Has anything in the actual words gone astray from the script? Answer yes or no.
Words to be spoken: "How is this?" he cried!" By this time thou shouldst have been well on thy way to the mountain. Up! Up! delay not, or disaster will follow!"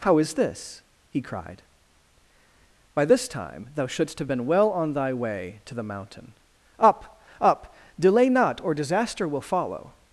no